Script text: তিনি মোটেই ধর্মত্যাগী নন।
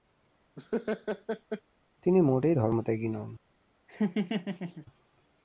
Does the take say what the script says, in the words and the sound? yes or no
no